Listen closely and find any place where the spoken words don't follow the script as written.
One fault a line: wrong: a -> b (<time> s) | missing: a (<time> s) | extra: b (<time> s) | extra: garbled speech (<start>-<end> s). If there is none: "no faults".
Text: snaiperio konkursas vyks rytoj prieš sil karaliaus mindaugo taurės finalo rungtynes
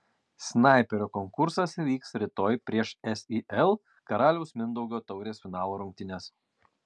no faults